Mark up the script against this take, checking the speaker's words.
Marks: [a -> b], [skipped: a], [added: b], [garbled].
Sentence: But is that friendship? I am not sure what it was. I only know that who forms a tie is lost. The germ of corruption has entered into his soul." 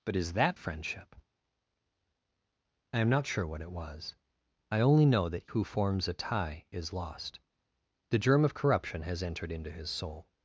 But is that friendship? I am not sure what it was. I only know that who forms a tie is lost. The germ of corruption has entered into his soul."